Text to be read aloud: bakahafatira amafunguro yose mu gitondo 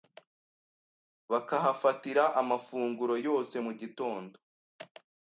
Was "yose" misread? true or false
false